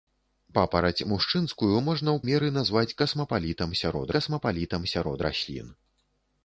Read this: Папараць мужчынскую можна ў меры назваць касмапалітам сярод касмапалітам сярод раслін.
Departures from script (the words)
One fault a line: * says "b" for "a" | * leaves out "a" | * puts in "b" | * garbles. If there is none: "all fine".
all fine